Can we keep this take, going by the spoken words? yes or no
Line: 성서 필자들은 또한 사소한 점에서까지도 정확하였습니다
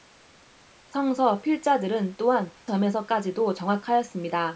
no